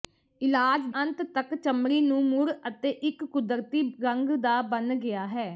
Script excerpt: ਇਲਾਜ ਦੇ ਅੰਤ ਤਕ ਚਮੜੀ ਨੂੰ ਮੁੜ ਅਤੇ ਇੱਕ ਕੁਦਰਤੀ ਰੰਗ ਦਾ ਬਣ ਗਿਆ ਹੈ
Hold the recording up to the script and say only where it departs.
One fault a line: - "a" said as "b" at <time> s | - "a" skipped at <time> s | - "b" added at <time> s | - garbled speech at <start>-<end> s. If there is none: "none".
- "ਦੇ" skipped at 0.8 s